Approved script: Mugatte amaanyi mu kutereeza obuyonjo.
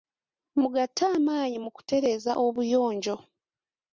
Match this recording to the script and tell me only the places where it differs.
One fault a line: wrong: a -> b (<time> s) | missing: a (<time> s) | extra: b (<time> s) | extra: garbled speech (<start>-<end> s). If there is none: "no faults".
no faults